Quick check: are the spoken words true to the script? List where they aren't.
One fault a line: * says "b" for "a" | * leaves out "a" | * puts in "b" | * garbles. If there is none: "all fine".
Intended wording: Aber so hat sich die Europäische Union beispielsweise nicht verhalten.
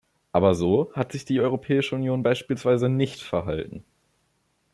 all fine